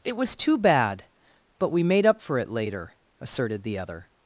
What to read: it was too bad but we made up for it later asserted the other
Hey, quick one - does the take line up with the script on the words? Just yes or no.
yes